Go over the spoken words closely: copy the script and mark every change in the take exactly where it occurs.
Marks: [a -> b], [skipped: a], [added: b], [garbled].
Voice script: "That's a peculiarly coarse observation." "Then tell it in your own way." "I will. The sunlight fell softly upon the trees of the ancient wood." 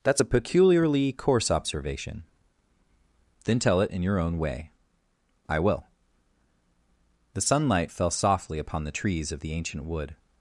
"That's a peculiarly coarse observation." "Then tell it in your own way." "I will. The sunlight fell softly upon the trees of the ancient wood."